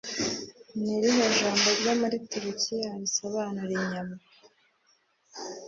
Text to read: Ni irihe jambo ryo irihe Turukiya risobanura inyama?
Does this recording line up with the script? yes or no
no